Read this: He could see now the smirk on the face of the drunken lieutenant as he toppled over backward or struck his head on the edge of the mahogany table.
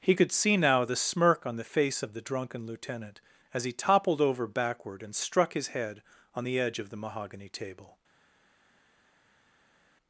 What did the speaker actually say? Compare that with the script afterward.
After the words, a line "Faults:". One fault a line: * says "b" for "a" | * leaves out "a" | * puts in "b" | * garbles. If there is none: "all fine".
He could see now the smirk on the face of the drunken lieutenant as he toppled over backward and struck his head on the edge of the mahogany table.
Faults:
* says "and" for "or"